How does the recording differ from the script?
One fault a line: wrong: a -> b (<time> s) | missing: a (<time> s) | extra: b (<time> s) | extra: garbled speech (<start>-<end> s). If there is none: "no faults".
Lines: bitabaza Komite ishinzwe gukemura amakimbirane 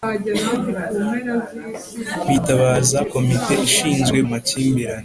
missing: gukemura (4.2 s)